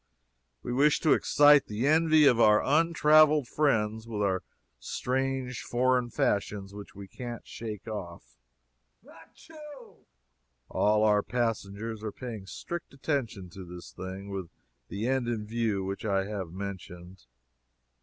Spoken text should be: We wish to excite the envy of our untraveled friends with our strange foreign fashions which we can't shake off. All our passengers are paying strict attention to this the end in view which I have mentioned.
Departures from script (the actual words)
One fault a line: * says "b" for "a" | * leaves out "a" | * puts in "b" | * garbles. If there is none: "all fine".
* puts in "thing with"